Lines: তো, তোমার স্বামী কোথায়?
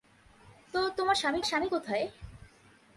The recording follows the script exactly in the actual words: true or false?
false